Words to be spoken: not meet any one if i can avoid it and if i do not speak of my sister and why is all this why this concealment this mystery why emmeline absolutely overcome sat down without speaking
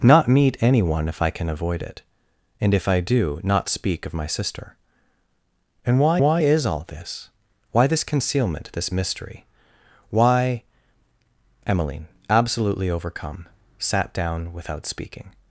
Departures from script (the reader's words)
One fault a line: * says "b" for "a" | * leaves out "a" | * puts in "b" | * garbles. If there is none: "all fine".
* puts in "why"